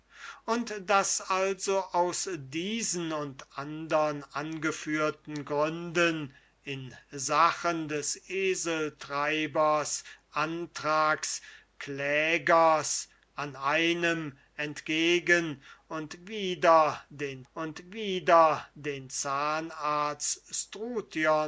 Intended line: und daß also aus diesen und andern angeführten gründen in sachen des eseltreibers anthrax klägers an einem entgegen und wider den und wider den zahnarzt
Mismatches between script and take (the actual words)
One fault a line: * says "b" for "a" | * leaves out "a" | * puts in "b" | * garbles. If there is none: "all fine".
all fine